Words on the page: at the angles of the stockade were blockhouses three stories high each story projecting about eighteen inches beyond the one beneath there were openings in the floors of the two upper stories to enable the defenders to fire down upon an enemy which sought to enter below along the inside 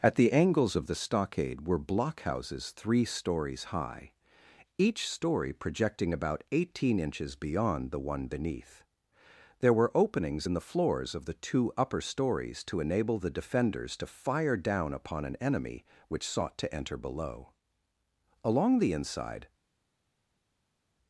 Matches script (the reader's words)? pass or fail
pass